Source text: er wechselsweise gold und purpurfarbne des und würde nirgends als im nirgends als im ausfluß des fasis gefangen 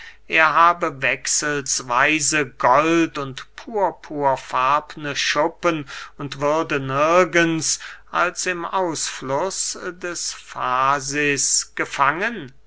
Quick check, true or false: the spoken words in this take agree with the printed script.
false